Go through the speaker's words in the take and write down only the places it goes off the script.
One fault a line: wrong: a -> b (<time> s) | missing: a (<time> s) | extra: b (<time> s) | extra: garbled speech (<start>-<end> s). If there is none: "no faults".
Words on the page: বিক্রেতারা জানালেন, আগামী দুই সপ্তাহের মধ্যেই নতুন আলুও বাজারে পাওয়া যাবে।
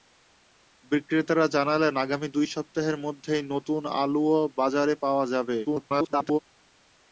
extra: garbled speech (5.6-6.4 s)